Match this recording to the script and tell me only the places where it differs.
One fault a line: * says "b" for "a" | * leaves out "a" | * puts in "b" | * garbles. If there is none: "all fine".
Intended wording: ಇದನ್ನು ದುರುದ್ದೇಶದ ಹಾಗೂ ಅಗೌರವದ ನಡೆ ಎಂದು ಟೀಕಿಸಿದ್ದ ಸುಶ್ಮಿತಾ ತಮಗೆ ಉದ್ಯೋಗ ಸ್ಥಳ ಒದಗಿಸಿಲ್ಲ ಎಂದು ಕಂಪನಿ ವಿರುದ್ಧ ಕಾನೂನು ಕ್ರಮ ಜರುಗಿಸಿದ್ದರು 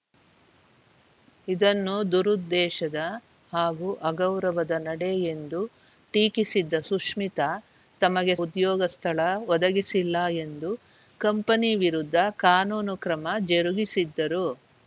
all fine